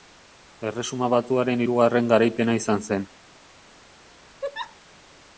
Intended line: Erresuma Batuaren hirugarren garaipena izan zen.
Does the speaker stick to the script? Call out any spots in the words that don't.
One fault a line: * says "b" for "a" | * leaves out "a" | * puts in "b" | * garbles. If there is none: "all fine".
all fine